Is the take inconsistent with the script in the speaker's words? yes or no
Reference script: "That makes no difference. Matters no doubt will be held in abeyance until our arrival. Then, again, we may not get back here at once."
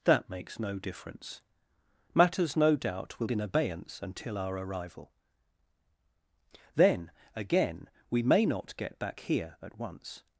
yes